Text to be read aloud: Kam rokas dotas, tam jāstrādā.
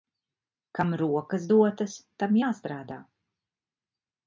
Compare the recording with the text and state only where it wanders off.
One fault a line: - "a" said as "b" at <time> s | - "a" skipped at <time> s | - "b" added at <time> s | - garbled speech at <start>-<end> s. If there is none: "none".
none